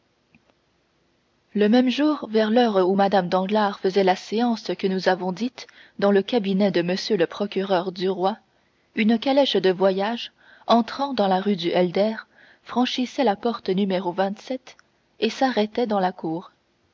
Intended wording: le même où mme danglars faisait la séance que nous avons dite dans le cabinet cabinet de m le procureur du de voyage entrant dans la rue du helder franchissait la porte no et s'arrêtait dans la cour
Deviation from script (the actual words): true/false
true